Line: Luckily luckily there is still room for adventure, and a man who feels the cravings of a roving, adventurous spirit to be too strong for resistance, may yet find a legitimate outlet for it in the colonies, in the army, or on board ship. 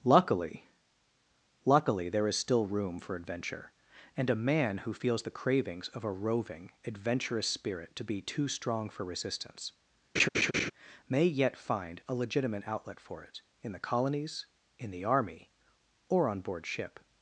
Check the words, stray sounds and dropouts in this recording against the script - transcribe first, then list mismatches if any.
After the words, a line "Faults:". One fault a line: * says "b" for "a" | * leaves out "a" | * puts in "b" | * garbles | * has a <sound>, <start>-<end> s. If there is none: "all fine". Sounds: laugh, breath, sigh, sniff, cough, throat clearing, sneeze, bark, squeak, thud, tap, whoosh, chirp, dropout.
Luckily luckily there is still room for adventure, and a man who feels the cravings of a roving, adventurous spirit to be too strong for resistance, may yet find a legitimate outlet for it in the colonies, in the army, or on board ship.
Faults:
* has a laugh, 10.2-10.7 s